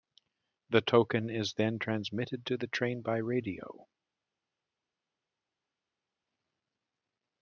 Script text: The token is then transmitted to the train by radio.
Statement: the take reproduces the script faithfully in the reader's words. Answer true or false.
true